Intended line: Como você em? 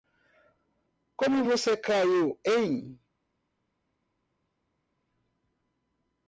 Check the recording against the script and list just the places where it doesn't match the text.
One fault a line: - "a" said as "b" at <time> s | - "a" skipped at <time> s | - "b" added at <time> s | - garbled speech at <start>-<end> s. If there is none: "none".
- "caiu" added at 1.8 s